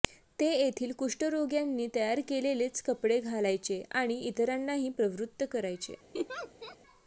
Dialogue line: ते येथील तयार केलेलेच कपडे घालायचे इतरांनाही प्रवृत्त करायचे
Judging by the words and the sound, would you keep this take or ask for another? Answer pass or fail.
fail